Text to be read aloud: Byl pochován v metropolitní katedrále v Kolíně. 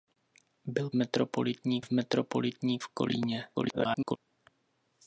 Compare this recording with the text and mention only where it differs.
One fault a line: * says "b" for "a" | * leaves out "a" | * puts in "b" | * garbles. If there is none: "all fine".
* says "metropolitní" for "pochován"
* leaves out "katedrále"
* garbles